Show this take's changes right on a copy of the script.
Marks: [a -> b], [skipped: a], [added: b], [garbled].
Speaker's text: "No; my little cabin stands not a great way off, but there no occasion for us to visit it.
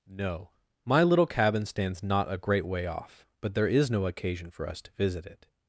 "No; my little cabin stands not a great way off, but there [added: is] no occasion for us to visit it.